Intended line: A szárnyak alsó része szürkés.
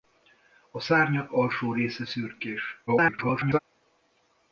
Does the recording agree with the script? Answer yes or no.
no